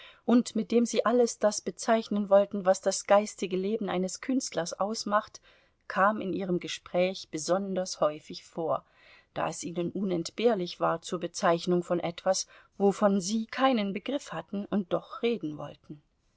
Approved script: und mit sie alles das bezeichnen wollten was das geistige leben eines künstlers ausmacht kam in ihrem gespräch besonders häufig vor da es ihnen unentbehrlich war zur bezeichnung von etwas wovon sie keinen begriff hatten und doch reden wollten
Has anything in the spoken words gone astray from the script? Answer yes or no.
yes